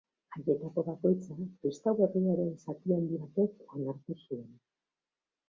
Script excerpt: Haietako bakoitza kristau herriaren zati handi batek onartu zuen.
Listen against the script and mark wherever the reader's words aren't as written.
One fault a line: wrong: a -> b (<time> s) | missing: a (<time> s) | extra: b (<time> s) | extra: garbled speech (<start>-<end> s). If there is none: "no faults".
no faults